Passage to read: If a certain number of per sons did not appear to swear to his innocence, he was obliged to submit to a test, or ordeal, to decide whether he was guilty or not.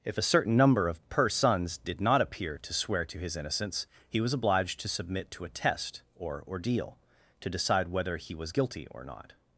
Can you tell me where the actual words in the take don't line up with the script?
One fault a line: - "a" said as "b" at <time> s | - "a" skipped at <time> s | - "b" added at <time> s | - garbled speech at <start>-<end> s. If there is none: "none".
none